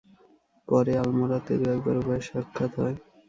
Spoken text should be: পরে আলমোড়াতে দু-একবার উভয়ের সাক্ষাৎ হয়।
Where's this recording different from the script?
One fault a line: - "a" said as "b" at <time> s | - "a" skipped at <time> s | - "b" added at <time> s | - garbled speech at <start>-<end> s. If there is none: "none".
none